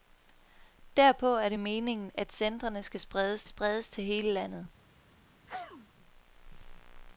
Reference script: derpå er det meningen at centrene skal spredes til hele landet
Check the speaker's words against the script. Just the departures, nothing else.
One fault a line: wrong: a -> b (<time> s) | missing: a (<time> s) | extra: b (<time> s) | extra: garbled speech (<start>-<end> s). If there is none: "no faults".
extra: spredes (3.5 s)